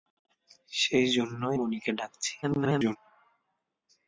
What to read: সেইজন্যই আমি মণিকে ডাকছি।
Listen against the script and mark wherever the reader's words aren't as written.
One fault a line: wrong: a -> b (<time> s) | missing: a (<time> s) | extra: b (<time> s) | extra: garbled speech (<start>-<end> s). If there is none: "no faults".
missing: আমি (1.6 s)
extra: garbled speech (2.4-3.0 s)